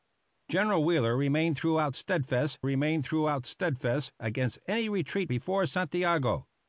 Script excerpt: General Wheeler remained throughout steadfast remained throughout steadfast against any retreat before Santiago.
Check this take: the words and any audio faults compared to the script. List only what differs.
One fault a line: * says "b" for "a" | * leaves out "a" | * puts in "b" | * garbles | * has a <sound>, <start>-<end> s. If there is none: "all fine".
all fine